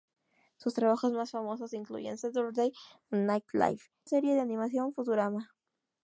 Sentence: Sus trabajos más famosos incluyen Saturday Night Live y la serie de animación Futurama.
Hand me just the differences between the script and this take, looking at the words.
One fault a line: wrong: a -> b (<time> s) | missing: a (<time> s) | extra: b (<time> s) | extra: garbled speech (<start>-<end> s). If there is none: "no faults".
missing: y la (3.8 s)